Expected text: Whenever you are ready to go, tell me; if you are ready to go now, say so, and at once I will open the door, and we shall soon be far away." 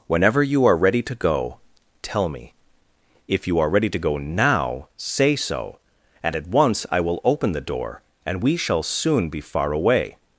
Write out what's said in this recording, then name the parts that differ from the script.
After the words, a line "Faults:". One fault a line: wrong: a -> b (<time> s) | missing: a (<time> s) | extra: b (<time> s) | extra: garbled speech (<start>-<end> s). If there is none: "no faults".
Whenever you are ready to go, tell me; if you are ready to go now, say so, and at once I will open the door, and we shall soon be far away."
Faults:
no faults